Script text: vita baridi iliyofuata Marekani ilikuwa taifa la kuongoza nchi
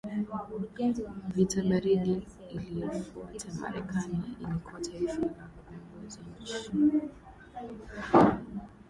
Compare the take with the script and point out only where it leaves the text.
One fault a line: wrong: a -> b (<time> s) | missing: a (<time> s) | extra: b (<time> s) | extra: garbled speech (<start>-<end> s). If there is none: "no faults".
no faults